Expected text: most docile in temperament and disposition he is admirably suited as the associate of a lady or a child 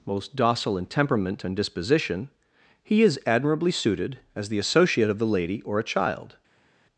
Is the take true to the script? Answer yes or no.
no